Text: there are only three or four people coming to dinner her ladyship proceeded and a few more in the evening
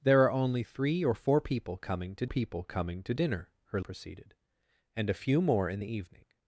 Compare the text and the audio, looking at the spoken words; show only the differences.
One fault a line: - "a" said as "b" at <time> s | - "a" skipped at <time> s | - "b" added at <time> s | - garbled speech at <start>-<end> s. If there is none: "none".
- "people coming to" added at 2.2 s
- "ladyship" skipped at 3.8 s